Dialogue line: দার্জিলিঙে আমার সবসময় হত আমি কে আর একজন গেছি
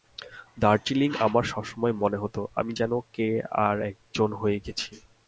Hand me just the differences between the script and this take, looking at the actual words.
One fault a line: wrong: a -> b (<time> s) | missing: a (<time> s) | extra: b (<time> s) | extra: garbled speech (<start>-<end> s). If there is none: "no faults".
extra: মনে (1.9 s)
extra: যেন (2.7 s)
extra: হয়ে (4.3 s)